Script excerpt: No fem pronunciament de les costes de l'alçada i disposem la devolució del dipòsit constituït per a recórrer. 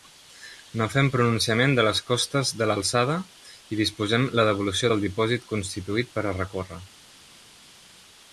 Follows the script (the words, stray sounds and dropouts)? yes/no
yes